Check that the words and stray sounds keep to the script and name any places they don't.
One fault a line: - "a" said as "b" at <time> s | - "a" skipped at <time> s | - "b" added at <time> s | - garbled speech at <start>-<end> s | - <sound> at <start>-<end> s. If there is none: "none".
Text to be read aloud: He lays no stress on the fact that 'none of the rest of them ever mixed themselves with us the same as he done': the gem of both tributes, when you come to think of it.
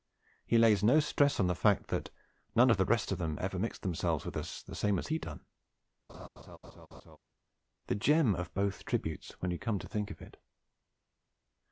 - laugh at 6.1-7.2 s